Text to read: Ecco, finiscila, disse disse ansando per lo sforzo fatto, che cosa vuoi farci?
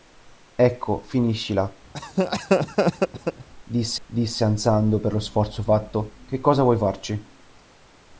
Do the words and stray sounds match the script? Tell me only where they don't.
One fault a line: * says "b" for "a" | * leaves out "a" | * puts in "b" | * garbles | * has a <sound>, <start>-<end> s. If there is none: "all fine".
* has a laugh, 1.9-3.5 s